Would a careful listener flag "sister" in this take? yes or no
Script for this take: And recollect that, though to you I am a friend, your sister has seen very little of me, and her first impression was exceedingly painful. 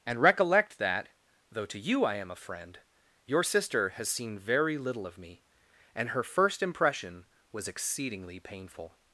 no